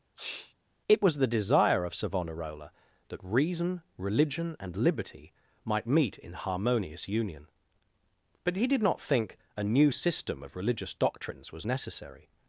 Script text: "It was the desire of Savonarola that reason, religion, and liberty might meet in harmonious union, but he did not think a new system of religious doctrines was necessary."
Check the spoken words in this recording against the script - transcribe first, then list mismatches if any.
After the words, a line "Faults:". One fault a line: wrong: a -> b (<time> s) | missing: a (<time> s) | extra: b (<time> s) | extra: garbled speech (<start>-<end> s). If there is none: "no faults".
"It was the desire of Savonarola that reason, religion, and liberty might meet in harmonious union, but he did not think a new system of religious doctrines was necessary."
Faults:
no faults